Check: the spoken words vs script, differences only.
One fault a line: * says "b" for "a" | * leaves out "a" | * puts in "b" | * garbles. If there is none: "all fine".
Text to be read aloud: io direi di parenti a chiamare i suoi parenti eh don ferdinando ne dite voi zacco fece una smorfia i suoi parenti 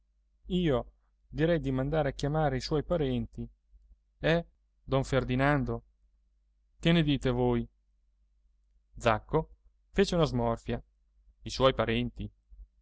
* says "mandare" for "parenti"
* puts in "che"